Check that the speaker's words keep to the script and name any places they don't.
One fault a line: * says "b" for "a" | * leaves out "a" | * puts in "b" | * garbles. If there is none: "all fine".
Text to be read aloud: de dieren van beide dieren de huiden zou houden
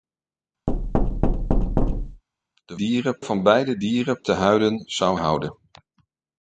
all fine